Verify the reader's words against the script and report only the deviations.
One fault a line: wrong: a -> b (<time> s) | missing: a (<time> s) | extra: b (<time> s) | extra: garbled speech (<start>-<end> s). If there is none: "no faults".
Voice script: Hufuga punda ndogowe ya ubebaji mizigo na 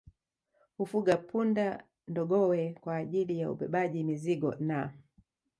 extra: kwa ajili (2.8 s)